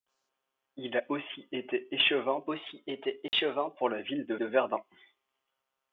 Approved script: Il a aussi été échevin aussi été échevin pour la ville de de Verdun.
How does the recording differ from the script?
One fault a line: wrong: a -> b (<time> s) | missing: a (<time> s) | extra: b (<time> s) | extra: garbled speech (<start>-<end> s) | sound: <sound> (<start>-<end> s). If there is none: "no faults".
sound: dropout (3.3-3.3 s)